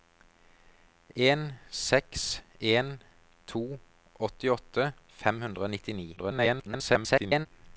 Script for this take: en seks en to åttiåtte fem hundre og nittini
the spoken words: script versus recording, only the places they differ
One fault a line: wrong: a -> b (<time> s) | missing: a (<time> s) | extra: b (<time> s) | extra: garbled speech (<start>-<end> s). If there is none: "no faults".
extra: garbled speech (6.2-7.5 s)